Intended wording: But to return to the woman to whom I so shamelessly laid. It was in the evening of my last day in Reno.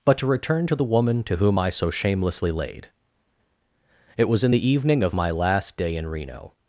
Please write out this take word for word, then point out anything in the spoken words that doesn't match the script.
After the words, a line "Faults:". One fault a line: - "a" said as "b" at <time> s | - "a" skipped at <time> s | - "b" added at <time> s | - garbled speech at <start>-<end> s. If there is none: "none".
But to return to the woman to whom I so shamelessly laid. It was in the evening of my last day in Reno.
Faults:
none